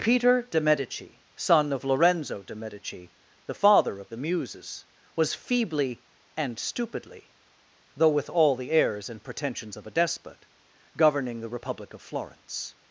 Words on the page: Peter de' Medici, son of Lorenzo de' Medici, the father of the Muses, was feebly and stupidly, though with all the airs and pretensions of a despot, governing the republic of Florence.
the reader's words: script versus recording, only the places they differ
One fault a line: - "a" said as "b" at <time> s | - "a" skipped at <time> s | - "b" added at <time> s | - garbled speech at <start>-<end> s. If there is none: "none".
none